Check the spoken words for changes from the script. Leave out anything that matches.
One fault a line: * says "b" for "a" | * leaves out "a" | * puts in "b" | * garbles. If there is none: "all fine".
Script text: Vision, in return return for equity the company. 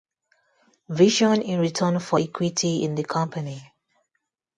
* leaves out "return"
* puts in "in"